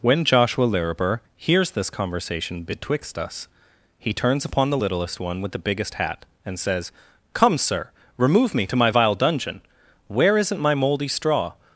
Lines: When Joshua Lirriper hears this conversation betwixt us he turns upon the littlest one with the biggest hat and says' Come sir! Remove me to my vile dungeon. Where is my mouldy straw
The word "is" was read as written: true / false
false